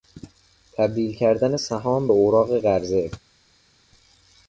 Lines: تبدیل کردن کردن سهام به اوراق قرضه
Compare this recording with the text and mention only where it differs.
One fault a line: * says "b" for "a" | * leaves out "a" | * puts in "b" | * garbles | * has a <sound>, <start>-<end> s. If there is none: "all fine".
* leaves out "کردن"